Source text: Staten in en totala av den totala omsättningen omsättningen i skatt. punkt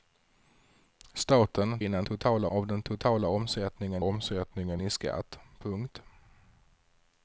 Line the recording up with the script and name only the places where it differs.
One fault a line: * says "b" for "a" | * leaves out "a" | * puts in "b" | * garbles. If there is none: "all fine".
all fine